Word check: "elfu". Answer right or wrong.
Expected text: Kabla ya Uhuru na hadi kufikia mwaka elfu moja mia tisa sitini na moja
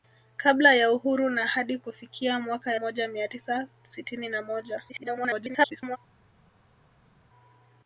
wrong